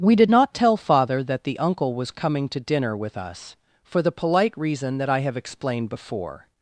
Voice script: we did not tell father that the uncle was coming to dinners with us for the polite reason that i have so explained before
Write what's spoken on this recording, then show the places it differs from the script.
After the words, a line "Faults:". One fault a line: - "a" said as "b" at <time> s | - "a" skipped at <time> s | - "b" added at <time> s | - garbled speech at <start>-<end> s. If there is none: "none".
we did not tell father that the uncle was coming to dinner with us for the polite reason that i have explained before
Faults:
- "dinners" said as "dinner" at 2.6 s
- "so" skipped at 5.4 s